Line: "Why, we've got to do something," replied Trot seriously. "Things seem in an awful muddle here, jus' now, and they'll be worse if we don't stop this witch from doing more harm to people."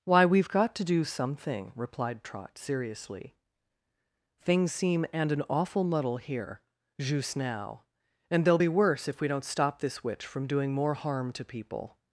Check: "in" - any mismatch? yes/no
yes